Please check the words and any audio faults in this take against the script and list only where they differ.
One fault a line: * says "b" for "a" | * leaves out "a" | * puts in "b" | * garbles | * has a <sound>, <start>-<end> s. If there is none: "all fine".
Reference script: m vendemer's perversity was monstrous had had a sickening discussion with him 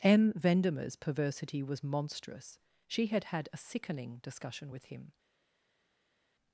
* puts in "she"